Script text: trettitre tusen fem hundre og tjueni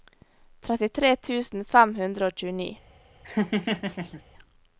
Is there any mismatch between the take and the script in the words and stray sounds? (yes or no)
yes